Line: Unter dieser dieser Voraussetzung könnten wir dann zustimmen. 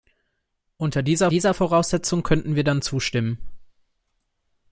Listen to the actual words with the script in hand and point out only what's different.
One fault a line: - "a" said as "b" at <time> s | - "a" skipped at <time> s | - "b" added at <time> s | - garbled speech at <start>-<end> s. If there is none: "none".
none